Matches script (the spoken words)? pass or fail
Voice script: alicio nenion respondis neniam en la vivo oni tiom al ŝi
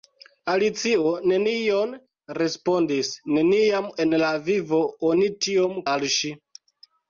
pass